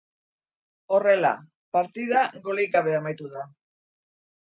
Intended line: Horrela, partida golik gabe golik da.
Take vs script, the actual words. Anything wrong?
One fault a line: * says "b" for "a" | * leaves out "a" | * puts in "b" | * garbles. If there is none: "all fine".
* says "amaitu" for "golik"